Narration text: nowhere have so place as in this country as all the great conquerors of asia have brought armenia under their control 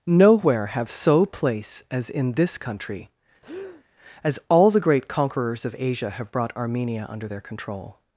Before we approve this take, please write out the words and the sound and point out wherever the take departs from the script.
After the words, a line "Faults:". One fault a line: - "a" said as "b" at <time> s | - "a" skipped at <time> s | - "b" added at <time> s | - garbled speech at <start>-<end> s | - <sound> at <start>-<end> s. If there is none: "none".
nowhere have so place as in this country as all the great conquerors of asia have brought armenia under their control
Faults:
- breath at 3.4-3.8 s